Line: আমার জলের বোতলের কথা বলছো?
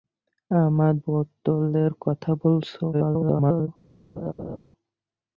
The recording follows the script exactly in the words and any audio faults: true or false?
false